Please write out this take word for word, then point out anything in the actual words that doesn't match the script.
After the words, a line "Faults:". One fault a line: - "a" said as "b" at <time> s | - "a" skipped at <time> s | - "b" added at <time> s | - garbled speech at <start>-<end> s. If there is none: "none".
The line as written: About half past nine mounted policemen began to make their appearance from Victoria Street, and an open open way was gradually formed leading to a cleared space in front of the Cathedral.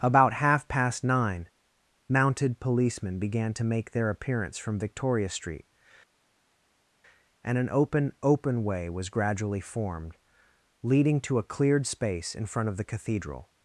About half past nine mounted policemen began to make their appearance from Victoria Street, and an open open way was gradually formed leading to a cleared space in front of the Cathedral.
Faults:
none